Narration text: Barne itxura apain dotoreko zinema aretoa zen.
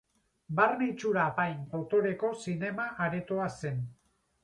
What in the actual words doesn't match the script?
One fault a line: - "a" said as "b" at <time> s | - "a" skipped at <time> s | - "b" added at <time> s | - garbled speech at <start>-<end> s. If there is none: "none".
none